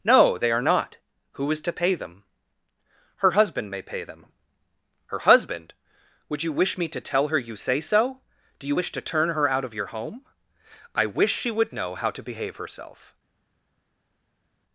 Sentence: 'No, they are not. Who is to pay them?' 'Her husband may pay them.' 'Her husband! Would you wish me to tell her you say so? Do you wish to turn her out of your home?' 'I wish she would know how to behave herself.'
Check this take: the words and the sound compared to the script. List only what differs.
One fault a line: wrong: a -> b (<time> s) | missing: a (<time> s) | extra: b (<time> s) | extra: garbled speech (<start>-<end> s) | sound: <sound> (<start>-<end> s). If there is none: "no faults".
no faults